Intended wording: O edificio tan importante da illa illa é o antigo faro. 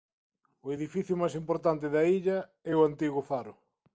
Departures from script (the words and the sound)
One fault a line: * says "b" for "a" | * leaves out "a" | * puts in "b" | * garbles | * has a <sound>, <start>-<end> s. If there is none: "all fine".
* says "máis" for "tan"
* leaves out "illa"